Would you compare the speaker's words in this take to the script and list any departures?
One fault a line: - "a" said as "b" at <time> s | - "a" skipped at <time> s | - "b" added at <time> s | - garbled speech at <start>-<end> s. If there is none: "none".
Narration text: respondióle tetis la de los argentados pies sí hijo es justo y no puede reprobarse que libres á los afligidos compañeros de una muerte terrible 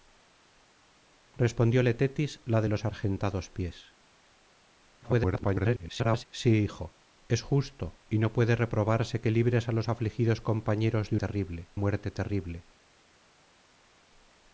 - garbled speech at 5.0-6.3 s
- "una" said as "terrible" at 11.2 s